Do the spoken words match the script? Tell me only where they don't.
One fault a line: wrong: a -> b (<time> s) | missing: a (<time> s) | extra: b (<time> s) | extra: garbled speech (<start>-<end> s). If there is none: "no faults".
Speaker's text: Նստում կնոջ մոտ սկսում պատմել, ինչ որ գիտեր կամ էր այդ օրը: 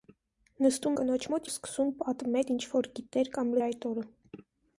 no faults